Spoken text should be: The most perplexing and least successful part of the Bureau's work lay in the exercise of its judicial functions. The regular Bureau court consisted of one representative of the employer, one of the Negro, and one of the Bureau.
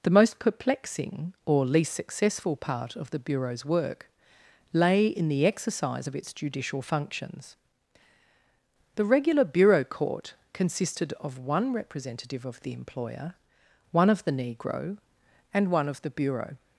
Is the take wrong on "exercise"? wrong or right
right